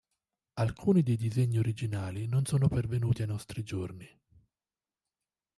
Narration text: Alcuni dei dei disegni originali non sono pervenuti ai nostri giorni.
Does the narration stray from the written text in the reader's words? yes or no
yes